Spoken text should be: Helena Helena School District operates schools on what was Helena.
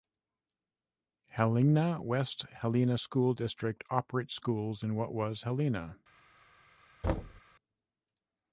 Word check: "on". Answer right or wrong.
wrong